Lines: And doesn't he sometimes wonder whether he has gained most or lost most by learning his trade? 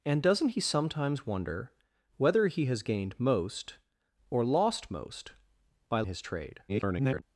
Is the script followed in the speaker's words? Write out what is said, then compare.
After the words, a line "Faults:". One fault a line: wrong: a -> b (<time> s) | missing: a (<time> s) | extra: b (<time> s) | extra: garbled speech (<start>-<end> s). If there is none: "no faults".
And doesn't he sometimes wonder whether he has gained most or lost most by his trade? [garbled]
Faults:
missing: learning (6.0 s)
extra: garbled speech (6.7-7.2 s)